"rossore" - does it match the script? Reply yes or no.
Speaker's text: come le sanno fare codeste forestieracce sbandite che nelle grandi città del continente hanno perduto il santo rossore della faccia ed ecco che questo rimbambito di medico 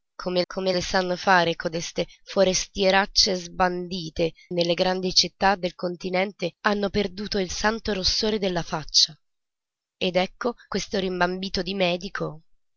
yes